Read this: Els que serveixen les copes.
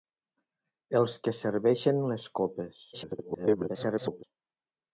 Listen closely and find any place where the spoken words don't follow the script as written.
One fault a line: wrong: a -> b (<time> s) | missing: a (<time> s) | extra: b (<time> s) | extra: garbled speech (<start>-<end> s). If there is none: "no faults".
extra: garbled speech (2.9-4.2 s)